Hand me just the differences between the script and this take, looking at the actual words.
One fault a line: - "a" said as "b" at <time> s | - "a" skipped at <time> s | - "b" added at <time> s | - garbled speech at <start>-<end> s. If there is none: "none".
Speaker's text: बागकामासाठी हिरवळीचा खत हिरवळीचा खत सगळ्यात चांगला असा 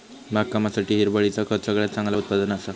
- "हिरवळीचा खत" skipped at 1.6 s
- "उत्पादन" added at 2.1 s